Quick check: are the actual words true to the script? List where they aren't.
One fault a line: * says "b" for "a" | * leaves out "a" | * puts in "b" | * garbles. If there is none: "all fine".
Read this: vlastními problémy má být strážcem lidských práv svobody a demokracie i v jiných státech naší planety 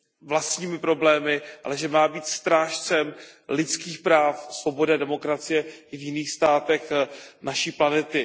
* puts in "ale že"